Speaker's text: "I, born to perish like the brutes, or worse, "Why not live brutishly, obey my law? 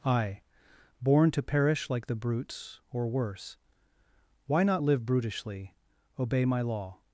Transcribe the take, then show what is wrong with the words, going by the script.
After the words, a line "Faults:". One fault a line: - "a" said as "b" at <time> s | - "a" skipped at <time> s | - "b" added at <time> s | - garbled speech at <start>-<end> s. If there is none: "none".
"I, born to perish like the brutes, or worse, "Why not live brutishly, obey my law?
Faults:
none